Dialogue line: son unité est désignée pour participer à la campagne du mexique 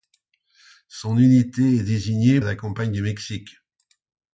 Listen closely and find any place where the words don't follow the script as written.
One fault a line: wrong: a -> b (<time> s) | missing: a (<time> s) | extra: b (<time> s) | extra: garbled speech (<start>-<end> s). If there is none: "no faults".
missing: pour participer (2.4 s)